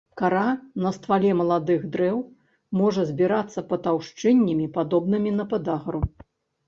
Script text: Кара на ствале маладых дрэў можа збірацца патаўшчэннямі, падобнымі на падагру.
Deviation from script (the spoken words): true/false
false